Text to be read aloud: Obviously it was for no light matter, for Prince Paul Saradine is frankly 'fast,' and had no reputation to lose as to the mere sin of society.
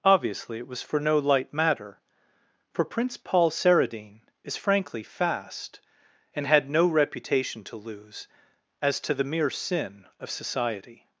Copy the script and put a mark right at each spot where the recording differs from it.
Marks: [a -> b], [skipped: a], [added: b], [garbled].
Obviously it was for no light matter, for Prince Paul Saradine is frankly 'fast,' and had no reputation to lose as to the mere sin of society.